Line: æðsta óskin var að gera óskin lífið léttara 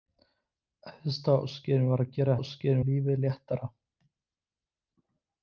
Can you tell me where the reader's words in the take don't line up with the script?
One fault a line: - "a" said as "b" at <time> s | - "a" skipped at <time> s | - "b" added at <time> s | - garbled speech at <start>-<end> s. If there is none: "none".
none